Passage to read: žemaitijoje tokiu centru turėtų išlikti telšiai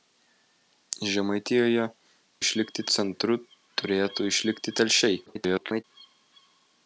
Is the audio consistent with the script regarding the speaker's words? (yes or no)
no